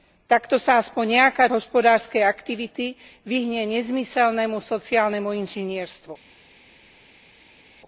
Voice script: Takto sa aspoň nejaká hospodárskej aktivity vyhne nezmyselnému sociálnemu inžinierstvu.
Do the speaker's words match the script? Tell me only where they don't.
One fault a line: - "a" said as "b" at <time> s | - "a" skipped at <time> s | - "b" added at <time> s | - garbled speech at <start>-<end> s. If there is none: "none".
none